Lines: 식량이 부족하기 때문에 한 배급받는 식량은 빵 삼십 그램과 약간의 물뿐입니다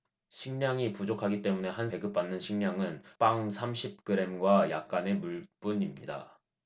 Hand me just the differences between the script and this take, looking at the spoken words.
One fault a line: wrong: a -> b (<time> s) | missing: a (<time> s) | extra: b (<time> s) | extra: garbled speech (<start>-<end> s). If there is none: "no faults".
no faults